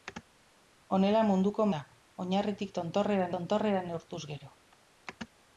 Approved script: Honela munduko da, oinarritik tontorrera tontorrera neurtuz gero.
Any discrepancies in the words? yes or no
no